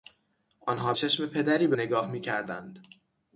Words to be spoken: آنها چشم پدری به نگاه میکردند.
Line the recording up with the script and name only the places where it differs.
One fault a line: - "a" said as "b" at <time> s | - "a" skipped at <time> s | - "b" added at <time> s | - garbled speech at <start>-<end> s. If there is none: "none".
none